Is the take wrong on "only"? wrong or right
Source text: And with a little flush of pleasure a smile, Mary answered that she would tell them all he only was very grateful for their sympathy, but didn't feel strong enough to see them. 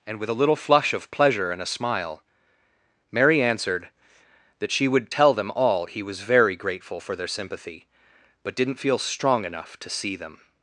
wrong